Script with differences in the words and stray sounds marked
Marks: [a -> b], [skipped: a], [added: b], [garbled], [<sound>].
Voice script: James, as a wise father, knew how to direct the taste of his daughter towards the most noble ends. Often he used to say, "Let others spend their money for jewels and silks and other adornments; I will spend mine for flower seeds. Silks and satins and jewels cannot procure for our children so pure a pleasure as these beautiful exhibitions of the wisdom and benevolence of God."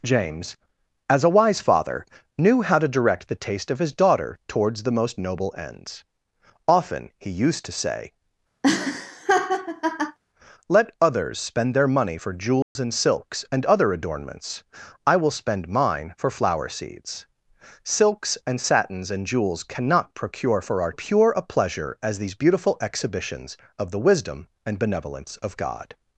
James, as a wise father, knew how to direct the taste of his daughter towards the most noble ends. Often he used to say, [laugh] "Let others spend their money for jewels [dropout] and silks and other adornments; I will spend mine for flower seeds. Silks and satins and jewels cannot procure for our [skipped: children so] pure a pleasure as these beautiful exhibitions of the wisdom and benevolence of God."